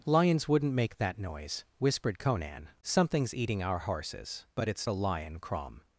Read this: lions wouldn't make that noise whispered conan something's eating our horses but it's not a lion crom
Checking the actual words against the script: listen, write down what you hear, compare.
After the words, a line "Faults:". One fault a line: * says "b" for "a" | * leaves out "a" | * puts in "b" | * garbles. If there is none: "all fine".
lions wouldn't make that noise whispered conan something's eating our horses but it's a lion crom
Faults:
* leaves out "not"